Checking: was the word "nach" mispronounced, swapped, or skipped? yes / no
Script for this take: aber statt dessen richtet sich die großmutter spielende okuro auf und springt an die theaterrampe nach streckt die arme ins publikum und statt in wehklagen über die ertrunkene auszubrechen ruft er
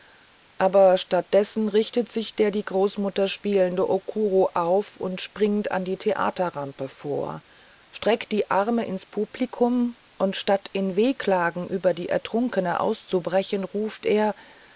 yes